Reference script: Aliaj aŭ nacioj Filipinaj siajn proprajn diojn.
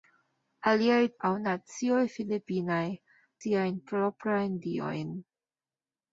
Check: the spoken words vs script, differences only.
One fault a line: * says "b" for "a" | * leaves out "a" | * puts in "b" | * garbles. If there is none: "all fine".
all fine